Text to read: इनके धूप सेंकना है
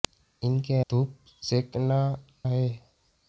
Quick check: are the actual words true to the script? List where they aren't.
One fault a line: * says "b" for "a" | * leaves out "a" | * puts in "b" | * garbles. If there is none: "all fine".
all fine